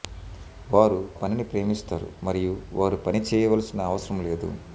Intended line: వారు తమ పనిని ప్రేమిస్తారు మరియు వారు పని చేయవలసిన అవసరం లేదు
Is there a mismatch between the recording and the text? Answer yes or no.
yes